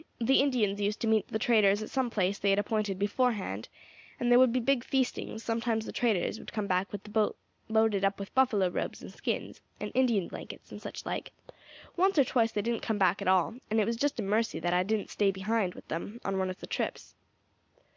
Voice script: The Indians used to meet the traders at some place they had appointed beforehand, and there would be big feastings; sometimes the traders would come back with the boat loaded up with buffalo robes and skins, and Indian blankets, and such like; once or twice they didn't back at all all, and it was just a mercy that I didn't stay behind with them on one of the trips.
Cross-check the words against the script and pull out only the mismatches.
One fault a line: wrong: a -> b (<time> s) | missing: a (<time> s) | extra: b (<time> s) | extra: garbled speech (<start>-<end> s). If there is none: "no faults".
extra: come (12.8 s)
missing: all (13.5 s)